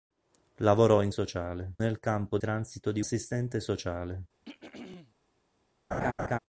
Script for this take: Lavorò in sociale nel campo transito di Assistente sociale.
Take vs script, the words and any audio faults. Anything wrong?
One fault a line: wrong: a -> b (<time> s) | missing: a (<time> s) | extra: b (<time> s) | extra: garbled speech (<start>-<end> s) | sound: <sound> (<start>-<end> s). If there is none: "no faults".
sound: throat clearing (4.4-5.1 s)
sound: laugh (5.9-6.4 s)